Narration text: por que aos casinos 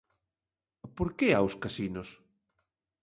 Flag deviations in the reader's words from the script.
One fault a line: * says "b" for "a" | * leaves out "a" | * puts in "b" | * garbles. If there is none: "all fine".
all fine